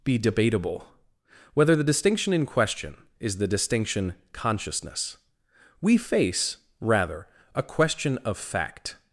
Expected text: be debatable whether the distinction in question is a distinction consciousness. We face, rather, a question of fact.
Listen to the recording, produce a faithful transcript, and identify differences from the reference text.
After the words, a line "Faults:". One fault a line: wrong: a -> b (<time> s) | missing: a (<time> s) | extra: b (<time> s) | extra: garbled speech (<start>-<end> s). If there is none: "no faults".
be debatable whether the distinction in question is the distinction consciousness. We face, rather, a question of fact.
Faults:
wrong: a -> the (3.4 s)